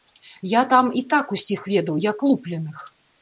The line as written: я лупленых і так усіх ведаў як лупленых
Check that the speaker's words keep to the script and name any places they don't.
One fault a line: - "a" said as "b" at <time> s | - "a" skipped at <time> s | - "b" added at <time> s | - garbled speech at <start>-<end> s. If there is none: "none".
- "лупленых" said as "там" at 0.7 s